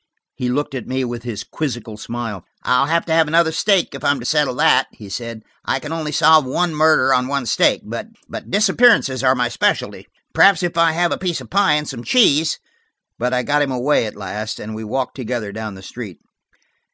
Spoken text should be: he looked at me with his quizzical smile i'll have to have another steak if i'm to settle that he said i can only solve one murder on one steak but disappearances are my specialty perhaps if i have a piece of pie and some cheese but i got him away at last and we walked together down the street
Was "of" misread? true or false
false